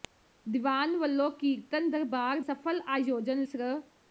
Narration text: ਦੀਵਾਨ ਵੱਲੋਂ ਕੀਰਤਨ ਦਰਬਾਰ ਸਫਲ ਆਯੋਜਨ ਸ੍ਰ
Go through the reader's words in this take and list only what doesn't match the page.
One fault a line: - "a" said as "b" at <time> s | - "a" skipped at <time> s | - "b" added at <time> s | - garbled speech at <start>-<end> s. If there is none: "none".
none